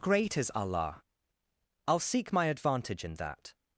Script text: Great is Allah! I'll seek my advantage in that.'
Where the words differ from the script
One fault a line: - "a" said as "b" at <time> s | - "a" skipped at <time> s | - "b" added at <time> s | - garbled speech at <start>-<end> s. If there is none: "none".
none